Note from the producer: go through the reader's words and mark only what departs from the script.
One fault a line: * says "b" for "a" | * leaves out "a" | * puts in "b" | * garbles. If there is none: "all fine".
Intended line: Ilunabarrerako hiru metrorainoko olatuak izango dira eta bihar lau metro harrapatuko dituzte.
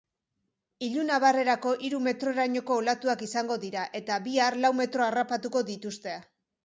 all fine